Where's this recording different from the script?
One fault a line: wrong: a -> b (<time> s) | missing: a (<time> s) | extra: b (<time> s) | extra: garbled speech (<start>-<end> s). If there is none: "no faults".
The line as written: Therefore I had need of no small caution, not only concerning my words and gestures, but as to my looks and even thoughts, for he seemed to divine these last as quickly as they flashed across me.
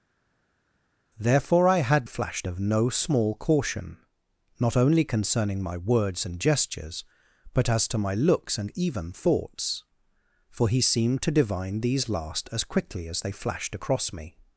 wrong: need -> flashed (2.0 s)